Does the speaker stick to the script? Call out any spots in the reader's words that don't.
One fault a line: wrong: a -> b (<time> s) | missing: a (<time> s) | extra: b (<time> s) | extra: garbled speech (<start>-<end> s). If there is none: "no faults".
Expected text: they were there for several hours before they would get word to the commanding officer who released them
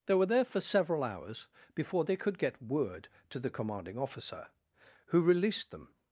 wrong: would -> could (2.1 s)